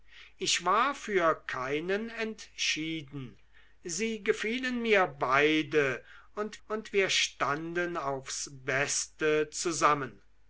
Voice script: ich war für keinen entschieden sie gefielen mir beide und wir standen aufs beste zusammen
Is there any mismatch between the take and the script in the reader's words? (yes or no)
yes